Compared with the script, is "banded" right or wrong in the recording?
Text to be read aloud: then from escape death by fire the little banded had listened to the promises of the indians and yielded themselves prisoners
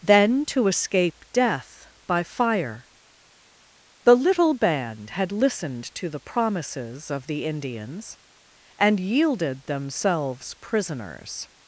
wrong